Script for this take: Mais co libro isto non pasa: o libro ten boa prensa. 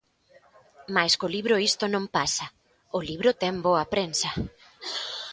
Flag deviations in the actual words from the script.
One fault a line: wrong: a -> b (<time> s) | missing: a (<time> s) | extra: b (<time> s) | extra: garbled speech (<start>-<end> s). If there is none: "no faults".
no faults